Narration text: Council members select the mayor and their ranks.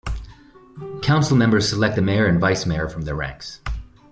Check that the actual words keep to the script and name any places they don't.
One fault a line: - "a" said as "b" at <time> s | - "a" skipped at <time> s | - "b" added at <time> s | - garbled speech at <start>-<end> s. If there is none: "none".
- "vice mayor from" added at 2.4 s